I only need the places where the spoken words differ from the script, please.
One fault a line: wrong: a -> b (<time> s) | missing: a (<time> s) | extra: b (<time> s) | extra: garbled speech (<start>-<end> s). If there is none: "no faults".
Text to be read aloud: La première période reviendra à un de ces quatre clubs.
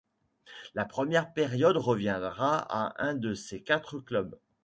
no faults